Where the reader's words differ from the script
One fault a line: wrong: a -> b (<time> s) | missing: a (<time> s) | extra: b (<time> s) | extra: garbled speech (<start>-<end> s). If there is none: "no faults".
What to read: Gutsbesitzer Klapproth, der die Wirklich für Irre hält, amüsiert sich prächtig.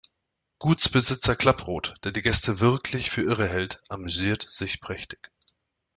extra: Gäste (2.2 s)